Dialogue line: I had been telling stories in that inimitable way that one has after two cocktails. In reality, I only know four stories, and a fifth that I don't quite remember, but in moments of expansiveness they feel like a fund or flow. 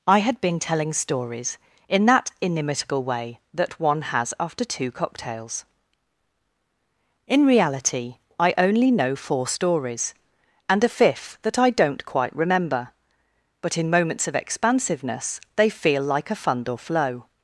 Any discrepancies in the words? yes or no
no